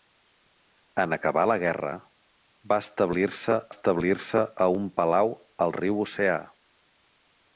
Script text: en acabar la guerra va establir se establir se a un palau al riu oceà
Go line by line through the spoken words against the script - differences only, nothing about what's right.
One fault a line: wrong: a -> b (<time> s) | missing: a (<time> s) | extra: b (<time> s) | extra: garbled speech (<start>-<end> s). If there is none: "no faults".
no faults